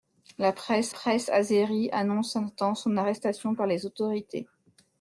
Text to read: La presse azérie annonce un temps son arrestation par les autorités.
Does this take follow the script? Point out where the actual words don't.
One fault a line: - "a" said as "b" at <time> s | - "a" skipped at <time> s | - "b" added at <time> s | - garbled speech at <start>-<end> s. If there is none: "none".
- "presse" added at 0.9 s